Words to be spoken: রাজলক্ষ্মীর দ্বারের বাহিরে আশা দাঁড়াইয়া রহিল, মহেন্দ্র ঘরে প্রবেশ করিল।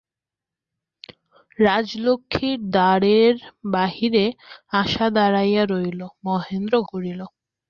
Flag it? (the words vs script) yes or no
yes